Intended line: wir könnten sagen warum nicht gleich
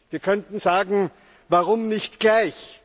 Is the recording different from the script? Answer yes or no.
no